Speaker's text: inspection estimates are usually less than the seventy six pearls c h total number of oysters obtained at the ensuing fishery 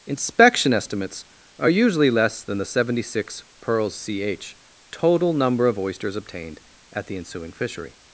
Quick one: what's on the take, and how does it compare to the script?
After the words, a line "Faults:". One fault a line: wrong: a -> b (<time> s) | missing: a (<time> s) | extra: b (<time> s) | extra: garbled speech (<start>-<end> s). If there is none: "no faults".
inspection estimates are usually less than the seventy six pearls c h total number of oysters obtained at the ensuing fishery
Faults:
no faults